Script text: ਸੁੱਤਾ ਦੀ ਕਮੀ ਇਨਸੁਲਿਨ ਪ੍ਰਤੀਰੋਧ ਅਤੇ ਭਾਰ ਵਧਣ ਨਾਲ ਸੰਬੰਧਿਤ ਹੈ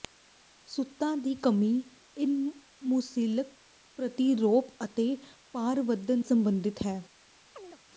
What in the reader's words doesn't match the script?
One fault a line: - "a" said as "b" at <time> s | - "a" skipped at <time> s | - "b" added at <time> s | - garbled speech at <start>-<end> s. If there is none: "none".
- "ਨਾਲ" skipped at 6.2 s